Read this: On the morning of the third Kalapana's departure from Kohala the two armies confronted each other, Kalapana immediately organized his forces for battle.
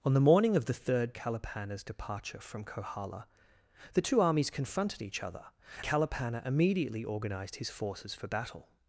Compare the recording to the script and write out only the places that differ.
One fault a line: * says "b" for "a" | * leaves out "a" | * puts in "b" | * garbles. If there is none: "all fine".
all fine